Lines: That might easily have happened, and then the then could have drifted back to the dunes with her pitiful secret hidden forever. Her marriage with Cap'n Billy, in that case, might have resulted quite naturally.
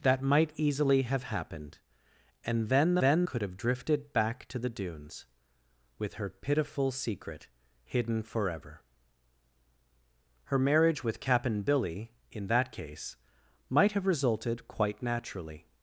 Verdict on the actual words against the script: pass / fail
pass